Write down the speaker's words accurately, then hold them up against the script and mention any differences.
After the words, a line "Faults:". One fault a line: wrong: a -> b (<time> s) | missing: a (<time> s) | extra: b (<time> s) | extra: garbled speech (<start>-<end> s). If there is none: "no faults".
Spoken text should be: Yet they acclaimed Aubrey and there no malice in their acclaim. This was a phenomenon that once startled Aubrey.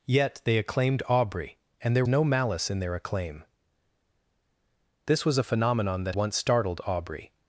Yet they acclaimed Aubrey and there no malice in their acclaim. This was a phenomenon that once startled Aubrey.
Faults:
no faults